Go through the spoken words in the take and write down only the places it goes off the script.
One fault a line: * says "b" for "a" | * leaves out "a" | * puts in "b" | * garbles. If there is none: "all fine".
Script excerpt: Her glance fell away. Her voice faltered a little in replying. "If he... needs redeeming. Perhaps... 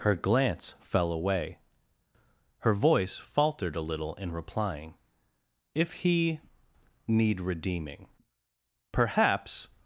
* says "need" for "needs"